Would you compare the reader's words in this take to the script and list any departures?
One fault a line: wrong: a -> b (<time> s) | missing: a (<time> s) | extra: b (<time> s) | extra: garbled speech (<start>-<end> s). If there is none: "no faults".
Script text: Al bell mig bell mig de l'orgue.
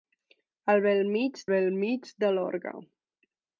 no faults